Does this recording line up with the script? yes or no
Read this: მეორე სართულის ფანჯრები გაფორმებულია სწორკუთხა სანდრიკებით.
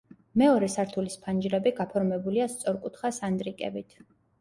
yes